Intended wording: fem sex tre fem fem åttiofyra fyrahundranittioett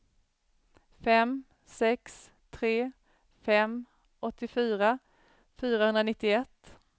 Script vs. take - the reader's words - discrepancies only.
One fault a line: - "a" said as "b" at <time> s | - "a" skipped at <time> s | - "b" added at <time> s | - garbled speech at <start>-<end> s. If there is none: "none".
- "fem" skipped at 3.9 s